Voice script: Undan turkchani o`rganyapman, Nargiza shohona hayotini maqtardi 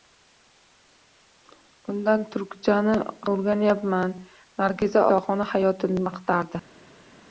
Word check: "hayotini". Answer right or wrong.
right